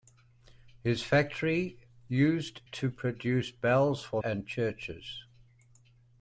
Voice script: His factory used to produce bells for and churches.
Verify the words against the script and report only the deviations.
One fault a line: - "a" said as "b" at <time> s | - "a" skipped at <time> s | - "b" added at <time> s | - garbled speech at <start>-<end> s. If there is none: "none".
none